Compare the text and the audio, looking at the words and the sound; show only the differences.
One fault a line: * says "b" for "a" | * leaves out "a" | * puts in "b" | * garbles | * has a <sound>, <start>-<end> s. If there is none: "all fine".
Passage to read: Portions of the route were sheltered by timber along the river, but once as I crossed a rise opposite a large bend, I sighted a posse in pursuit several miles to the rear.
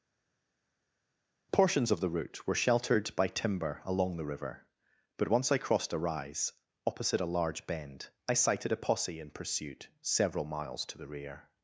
* leaves out "as"